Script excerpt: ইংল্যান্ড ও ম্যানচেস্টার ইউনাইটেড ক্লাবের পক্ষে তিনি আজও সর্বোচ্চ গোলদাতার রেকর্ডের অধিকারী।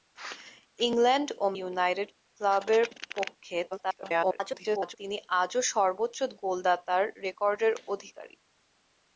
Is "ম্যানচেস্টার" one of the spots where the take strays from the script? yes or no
yes